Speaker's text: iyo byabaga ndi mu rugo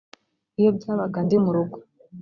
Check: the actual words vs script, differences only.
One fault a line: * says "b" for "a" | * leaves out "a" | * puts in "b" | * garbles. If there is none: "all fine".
all fine